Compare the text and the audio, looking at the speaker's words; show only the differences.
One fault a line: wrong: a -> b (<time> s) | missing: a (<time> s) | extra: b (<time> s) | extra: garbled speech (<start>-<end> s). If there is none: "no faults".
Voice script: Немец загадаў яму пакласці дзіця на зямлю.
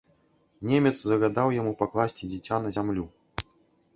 no faults